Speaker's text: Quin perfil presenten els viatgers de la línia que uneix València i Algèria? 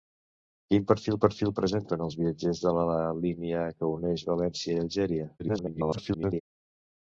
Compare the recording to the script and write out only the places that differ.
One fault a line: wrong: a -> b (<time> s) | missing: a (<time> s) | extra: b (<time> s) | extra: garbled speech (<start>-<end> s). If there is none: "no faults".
extra: perfil (1.2 s)
extra: garbled speech (5.4-6.4 s)